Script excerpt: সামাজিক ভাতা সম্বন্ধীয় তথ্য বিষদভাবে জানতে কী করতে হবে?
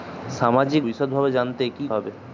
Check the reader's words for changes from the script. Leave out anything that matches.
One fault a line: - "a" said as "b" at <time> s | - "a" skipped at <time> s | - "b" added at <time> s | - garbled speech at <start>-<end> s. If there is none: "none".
- "ভাতা সম্বন্ধীয় তথ্য" skipped at 0.8 s
- "করতে" skipped at 1.8 s